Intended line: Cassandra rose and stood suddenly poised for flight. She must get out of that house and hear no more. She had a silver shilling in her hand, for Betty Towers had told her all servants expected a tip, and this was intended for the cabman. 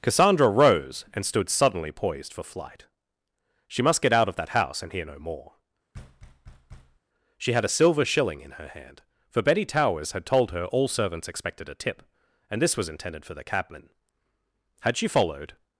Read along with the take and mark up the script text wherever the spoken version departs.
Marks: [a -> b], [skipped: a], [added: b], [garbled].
Cassandra rose and stood suddenly poised for flight. She must get out of that house and hear no more. She had a silver shilling in her hand, for Betty Towers had told her all servants expected a tip, and this was intended for the cabman. [added: Had she followed]